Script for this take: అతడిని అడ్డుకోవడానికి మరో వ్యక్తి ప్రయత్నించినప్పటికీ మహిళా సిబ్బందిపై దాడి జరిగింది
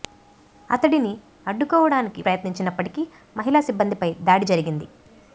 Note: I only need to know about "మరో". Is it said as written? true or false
false